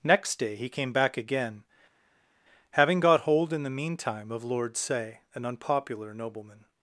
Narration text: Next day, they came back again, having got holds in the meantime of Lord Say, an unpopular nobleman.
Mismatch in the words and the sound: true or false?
true